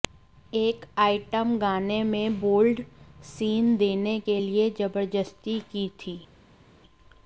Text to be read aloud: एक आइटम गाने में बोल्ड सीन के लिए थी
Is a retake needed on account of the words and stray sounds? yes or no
yes